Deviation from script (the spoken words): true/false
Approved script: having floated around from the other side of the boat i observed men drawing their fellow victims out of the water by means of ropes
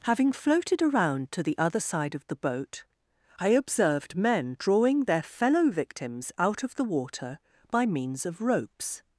true